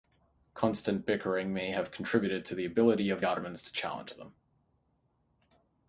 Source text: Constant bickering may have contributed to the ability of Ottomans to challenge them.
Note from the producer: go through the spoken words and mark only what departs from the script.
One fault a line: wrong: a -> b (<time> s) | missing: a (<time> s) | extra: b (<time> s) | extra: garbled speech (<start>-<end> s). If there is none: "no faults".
no faults